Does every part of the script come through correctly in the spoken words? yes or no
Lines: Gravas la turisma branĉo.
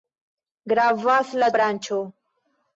no